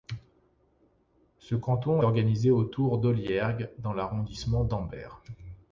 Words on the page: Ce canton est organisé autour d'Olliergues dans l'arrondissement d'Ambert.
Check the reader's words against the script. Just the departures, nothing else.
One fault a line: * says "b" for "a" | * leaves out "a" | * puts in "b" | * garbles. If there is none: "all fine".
* leaves out "est"